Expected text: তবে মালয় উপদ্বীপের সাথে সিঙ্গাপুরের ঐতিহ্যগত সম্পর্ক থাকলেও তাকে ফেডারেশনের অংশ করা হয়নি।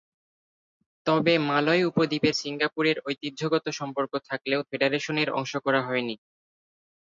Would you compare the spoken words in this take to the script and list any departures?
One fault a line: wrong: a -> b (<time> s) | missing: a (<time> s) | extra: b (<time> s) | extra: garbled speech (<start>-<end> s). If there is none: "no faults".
missing: সাথে (2.4 s)
missing: তাকে (4.6 s)